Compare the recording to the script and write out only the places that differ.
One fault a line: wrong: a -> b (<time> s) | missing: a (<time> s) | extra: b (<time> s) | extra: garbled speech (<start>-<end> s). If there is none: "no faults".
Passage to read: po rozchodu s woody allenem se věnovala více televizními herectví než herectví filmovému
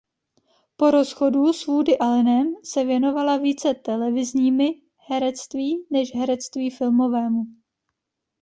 no faults